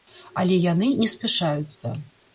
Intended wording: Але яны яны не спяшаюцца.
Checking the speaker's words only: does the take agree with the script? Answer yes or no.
no